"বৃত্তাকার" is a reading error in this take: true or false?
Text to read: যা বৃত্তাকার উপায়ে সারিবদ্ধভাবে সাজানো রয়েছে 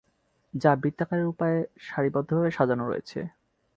false